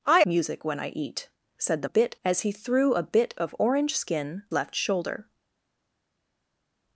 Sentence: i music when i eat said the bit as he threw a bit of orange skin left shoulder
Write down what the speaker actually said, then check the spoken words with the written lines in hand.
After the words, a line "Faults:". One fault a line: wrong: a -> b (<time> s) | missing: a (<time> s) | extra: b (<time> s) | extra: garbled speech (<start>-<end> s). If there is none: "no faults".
i music when i eat said the bit as he threw a bit of orange skin left shoulder
Faults:
no faults